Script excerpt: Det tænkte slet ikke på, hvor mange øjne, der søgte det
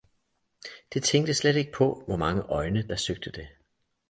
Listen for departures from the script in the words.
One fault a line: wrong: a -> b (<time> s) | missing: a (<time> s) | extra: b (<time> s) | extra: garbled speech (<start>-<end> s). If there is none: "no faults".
no faults